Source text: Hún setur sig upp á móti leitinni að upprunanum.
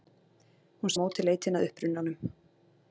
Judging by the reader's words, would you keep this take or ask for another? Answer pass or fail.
fail